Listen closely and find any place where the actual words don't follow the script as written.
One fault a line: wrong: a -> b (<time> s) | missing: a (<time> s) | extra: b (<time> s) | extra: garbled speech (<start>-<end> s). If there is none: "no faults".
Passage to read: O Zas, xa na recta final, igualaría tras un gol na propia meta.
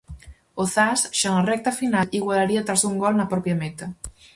no faults